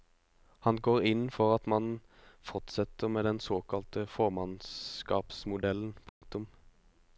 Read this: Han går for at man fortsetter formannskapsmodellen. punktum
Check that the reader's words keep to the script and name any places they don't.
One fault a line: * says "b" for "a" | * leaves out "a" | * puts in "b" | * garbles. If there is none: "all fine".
* puts in "inn"
* puts in "med den såkalte"